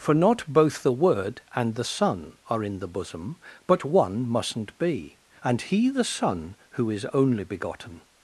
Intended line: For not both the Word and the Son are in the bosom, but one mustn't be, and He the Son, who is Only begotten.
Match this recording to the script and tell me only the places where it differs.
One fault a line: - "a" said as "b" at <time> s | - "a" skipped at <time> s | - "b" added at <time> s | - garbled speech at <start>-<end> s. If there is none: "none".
none